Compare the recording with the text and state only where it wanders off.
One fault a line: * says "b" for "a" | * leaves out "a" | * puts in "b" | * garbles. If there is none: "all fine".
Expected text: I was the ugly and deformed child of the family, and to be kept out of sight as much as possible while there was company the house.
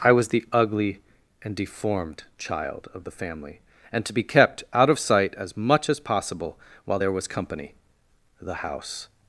all fine